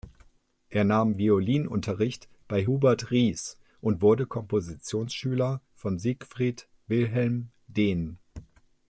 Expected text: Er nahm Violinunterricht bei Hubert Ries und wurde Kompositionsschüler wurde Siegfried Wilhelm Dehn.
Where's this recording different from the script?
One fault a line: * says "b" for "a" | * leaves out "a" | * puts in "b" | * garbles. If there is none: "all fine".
* says "von" for "wurde"